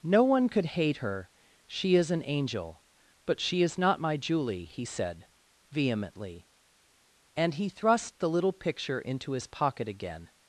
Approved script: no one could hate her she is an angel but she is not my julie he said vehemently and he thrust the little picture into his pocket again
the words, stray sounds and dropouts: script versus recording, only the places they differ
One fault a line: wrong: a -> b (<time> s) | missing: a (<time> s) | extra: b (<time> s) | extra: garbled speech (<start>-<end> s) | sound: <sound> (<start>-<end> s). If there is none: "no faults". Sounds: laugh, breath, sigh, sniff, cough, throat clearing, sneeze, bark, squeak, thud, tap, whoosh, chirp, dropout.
no faults